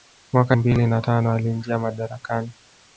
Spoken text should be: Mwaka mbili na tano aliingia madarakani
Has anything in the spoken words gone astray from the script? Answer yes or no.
no